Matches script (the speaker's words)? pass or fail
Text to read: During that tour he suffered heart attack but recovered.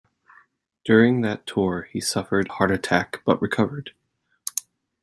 pass